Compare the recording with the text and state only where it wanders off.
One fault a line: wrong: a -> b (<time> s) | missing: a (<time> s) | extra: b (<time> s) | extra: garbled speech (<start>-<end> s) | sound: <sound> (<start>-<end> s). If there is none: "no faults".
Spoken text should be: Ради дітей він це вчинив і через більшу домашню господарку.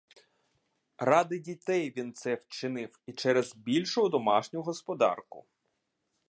no faults